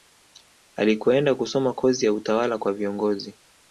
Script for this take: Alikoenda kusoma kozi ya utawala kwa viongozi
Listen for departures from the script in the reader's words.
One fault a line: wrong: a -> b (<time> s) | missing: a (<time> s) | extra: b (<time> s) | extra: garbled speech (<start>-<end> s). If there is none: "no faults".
no faults